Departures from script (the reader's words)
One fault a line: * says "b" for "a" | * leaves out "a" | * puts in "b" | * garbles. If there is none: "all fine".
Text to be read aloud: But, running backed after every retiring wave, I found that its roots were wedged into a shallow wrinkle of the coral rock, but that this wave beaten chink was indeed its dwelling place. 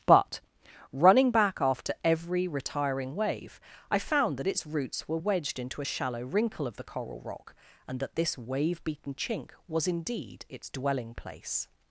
* says "back" for "backed"
* says "and" for "but"